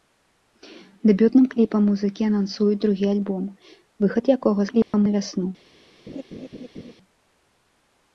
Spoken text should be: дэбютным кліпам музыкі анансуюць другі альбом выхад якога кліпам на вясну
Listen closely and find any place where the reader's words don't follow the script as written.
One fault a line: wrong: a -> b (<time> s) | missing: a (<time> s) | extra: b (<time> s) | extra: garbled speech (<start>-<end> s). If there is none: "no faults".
no faults